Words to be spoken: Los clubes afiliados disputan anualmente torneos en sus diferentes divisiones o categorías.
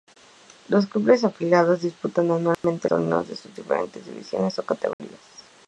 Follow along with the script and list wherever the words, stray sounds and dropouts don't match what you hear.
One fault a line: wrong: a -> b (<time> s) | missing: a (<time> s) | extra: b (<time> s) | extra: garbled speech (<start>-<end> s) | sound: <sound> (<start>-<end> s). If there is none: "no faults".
sound: dropout (2.5-2.6 s)
sound: dropout (4.9-5.0 s)